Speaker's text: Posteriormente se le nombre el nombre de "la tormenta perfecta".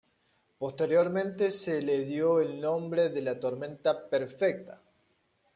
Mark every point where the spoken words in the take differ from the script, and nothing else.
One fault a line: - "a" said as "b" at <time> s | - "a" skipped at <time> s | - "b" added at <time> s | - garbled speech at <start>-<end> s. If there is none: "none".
- "nombre" said as "dio" at 2.0 s